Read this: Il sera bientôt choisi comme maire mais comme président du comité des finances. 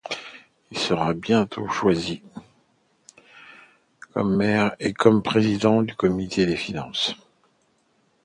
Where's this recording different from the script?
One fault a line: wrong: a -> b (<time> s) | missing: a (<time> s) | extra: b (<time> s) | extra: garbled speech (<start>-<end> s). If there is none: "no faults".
wrong: mais -> et (4.8 s)